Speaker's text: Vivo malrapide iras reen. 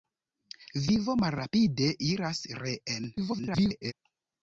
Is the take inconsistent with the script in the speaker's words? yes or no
yes